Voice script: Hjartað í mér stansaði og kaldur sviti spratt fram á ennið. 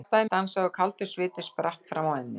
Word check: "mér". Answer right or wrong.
wrong